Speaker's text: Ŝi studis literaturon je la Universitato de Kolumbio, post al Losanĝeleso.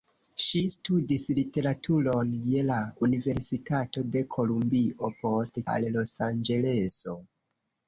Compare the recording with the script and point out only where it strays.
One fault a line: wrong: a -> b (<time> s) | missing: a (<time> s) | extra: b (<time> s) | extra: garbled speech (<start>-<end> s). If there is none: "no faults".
no faults